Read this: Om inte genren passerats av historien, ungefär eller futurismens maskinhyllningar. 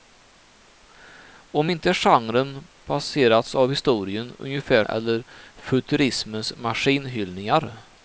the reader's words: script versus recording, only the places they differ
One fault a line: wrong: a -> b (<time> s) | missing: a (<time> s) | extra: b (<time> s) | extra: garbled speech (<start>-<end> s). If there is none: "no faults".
no faults